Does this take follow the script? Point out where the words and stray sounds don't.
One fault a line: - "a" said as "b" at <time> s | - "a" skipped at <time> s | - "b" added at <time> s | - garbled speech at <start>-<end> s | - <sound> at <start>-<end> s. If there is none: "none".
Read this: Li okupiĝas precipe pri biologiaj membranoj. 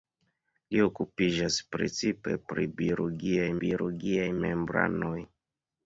- "biologiaj" added at 3.6 s